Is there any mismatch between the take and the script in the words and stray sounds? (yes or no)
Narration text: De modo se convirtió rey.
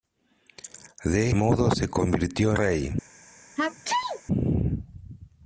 yes